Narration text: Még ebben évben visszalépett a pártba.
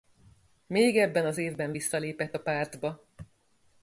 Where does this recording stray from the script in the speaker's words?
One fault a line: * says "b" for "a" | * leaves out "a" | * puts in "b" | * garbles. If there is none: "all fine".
* puts in "az"